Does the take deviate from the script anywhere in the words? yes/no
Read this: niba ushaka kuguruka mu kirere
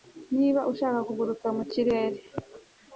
no